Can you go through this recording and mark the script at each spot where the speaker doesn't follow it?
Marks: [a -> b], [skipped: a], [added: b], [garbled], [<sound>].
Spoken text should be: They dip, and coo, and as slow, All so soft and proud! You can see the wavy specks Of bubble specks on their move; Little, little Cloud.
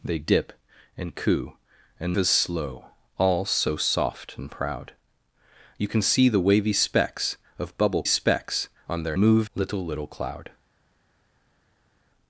They dip, and coo, and as slow, All so soft and proud! You can see the wavy specks Of bubble specks on their move; Little, little Cloud.